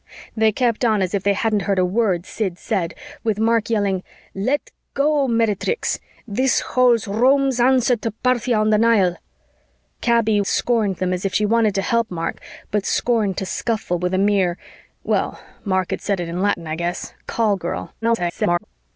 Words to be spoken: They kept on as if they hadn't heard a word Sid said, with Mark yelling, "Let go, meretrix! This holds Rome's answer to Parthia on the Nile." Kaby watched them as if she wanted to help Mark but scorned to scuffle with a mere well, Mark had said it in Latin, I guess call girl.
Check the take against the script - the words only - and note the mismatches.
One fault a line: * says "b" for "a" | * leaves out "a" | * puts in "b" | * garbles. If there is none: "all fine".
* says "scorned" for "watched"
* garbles